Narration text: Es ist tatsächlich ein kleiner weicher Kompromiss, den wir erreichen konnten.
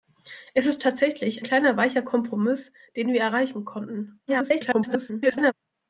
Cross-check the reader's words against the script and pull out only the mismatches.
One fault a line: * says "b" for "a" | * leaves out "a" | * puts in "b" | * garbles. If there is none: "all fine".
* leaves out "ein"
* garbles